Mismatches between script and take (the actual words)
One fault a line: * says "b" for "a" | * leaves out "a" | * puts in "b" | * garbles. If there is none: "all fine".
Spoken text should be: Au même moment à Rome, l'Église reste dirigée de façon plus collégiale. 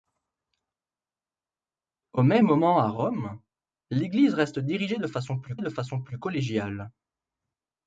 * puts in "de façon plus"